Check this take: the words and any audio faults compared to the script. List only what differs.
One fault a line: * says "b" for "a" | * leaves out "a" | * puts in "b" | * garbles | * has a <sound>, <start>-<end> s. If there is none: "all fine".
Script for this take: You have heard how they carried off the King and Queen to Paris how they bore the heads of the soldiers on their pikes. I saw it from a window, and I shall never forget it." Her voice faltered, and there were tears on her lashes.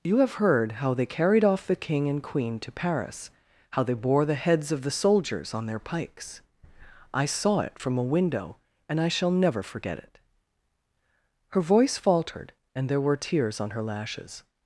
all fine